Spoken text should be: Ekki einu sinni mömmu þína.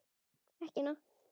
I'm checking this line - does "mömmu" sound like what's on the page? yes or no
no